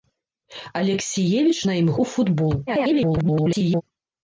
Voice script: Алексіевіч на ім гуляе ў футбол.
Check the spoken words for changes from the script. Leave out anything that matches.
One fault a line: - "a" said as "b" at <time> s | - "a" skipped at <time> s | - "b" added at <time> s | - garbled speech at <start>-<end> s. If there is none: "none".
- "гуляе" skipped at 1.9 s
- garbled speech at 2.7-3.8 s